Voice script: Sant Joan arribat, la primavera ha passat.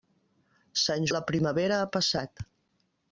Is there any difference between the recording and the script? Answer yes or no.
yes